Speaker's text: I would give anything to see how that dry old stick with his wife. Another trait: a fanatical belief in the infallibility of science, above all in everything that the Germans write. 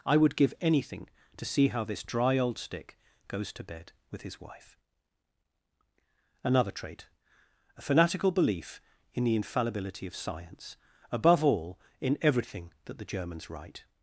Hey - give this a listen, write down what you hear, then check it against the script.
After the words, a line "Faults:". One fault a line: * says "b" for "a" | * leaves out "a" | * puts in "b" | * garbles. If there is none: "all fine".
I would give anything to see how this dry old stick goes to bed with his wife. Another trait: a fanatical belief in the infallibility of science, above all in everything that the Germans write.
Faults:
* says "this" for "that"
* puts in "goes to bed"